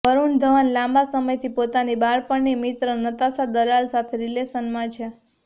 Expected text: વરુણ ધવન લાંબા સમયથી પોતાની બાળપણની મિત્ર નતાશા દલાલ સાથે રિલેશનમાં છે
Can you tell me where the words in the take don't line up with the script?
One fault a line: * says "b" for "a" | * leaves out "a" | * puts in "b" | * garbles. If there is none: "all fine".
all fine